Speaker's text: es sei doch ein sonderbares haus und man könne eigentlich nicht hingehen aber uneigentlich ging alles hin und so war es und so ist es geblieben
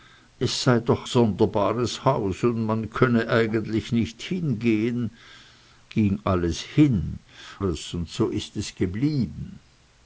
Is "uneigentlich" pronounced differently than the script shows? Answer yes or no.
yes